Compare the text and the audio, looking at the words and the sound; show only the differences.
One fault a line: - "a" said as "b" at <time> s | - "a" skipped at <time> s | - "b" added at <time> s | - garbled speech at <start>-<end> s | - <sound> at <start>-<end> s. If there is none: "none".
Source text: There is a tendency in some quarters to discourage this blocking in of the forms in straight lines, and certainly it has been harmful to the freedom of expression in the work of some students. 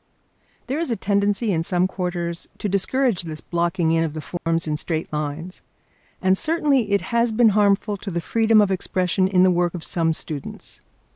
- dropout at 4.4-4.5 s